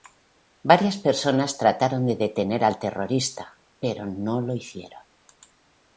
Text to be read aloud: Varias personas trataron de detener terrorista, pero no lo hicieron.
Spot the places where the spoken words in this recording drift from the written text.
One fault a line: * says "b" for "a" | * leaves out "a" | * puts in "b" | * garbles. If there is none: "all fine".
* puts in "al"